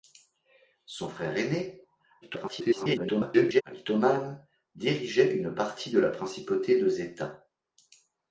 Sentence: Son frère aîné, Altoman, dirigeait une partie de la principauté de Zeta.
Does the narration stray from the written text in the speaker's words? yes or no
yes